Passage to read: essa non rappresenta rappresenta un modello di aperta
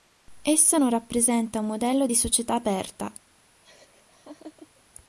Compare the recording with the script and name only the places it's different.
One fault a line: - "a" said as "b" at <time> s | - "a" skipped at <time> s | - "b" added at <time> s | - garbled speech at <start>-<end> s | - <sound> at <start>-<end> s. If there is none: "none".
- "rappresenta" skipped at 1.6 s
- "società" added at 2.1 s
- laugh at 3.6-4.8 s